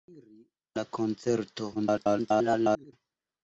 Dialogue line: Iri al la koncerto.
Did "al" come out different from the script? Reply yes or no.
yes